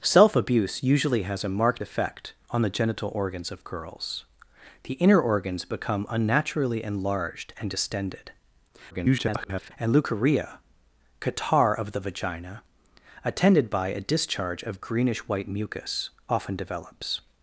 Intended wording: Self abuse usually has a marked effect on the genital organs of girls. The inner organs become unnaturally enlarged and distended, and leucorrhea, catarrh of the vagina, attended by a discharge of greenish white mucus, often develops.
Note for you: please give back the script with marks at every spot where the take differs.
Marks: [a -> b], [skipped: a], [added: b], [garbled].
Self abuse usually has a marked effect on the genital organs of girls. The inner organs become unnaturally enlarged and distended, [garbled] and leucorrhea, catarrh of the vagina, attended by a discharge of greenish white mucus, often develops.